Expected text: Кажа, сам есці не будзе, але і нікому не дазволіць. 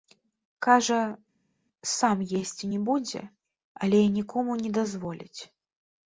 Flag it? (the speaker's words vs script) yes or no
no